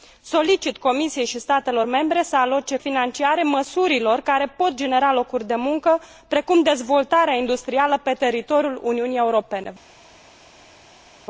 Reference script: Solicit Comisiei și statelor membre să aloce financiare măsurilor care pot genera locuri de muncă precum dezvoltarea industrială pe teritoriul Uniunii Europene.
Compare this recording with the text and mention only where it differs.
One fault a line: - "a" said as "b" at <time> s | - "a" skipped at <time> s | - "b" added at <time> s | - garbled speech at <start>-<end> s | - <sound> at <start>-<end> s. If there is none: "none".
none